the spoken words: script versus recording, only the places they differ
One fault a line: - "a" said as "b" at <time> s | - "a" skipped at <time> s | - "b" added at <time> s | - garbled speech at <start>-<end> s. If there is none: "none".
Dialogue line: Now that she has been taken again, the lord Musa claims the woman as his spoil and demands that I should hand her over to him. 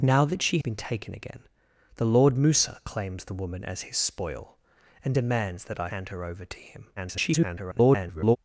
- "has" skipped at 0.6 s
- "should" skipped at 5.9 s
- garbled speech at 7.0-8.4 s